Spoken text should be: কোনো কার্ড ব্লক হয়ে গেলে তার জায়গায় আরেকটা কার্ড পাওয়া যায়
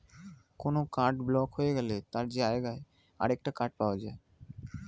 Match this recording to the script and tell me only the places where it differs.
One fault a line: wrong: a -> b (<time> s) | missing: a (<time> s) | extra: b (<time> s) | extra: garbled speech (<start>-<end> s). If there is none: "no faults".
no faults